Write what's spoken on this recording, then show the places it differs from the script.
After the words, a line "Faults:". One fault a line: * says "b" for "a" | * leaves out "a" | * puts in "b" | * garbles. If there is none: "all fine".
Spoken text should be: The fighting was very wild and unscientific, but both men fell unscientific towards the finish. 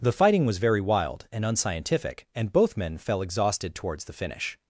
The fighting was very wild and unscientific, and both men fell exhausted towards the finish.
Faults:
* says "and" for "but"
* says "exhausted" for "unscientific"